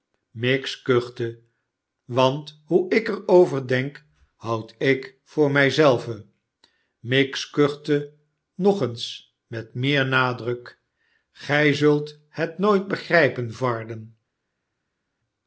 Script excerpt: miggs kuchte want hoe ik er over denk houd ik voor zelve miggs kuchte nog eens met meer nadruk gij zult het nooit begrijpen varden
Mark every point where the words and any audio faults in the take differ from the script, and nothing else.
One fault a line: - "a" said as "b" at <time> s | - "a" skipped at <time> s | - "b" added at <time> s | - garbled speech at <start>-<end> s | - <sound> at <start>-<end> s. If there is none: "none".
- "mij" added at 5.5 s